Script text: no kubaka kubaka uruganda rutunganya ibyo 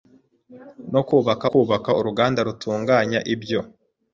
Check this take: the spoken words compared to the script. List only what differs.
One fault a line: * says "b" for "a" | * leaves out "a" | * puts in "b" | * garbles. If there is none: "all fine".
all fine